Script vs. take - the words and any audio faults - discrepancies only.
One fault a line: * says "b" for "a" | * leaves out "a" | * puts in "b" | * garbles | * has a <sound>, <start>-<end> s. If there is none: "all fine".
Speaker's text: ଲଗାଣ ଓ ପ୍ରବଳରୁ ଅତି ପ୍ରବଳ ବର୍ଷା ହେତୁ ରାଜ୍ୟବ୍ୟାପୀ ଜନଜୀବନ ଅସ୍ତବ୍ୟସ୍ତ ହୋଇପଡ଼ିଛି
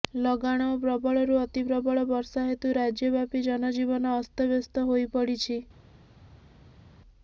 all fine